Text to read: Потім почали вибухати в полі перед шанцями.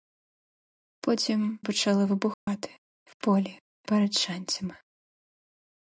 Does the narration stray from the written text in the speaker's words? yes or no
no